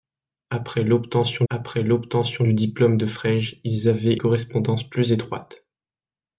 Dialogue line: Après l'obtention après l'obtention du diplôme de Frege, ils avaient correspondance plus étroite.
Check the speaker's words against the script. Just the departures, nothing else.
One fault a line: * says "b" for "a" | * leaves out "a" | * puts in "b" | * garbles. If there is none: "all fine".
all fine